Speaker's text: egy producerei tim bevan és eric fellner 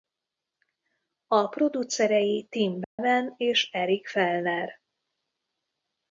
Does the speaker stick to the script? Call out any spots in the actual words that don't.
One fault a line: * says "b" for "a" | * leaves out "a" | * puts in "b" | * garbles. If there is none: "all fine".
* says "a" for "egy"